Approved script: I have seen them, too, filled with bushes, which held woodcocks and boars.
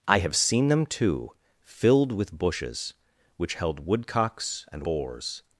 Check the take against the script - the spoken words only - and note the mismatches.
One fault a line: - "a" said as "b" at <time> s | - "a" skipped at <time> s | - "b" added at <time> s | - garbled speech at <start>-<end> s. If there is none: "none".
none